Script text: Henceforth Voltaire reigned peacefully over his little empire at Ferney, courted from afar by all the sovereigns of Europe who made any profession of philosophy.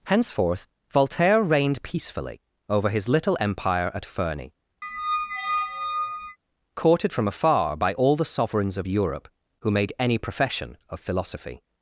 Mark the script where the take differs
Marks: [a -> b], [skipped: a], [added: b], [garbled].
Henceforth Voltaire reigned peacefully over his little empire at Ferney, courted from afar by all the sovereigns of Europe who made any profession of philosophy.